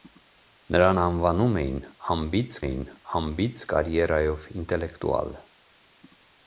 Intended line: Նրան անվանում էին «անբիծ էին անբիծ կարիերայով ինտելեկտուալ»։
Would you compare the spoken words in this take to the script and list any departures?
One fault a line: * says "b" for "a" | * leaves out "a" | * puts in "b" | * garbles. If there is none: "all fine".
all fine